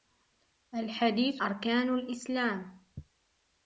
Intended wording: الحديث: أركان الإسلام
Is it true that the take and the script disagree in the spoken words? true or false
false